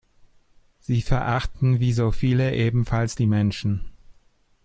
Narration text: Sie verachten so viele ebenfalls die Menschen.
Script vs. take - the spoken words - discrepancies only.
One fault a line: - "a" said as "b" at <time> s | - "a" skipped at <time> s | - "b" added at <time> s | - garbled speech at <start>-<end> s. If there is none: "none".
- "wie" added at 1.8 s